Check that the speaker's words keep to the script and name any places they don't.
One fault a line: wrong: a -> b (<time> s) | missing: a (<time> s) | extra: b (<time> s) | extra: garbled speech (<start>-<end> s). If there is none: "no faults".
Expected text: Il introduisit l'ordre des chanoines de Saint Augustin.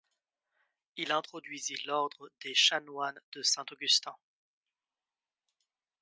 no faults